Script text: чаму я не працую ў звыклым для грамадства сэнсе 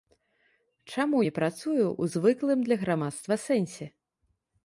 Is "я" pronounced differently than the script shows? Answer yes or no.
yes